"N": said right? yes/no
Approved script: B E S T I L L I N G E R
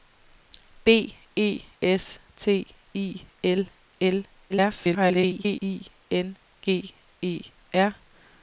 yes